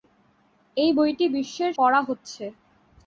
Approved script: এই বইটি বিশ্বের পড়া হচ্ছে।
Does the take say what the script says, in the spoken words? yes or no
yes